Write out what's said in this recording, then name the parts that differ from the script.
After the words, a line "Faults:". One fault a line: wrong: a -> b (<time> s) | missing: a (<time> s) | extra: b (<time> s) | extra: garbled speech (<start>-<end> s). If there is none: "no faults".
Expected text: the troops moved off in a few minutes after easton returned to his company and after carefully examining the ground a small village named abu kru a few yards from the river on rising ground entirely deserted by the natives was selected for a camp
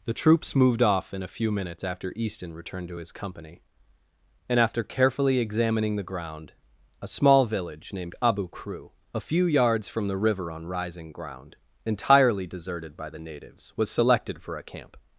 the troops moved off in a few minutes after easton returned to his company and after carefully examining the ground a small village named abu kru a few yards from the river on rising ground entirely deserted by the natives was selected for a camp
Faults:
no faults